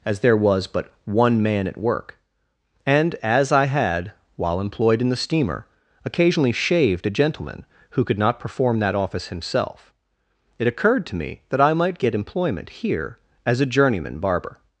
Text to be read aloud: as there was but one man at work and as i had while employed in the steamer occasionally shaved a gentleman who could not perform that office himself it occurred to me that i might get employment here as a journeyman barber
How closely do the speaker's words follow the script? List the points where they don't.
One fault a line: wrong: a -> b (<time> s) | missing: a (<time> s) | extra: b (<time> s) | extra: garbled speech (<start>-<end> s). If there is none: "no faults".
no faults